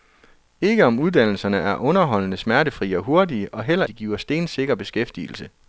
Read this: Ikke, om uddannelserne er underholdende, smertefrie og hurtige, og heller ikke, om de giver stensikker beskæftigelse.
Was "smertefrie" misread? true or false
false